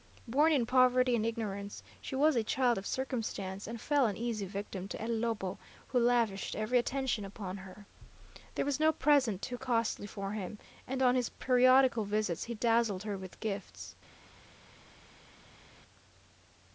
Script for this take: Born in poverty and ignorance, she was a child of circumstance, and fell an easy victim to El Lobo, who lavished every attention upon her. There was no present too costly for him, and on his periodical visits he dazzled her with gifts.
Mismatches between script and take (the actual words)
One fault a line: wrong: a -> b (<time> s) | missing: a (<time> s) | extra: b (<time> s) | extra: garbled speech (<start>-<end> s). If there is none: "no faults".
no faults